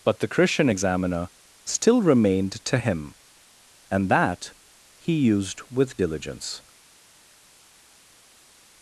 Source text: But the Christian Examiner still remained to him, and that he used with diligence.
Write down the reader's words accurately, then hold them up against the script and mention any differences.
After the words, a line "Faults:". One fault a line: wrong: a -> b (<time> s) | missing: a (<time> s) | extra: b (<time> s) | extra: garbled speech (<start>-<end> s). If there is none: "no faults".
But the Christian Examiner still remained to him, and that he used with diligence.
Faults:
no faults